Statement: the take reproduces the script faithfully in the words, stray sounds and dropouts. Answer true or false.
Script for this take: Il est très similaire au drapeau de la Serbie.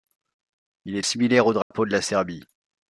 false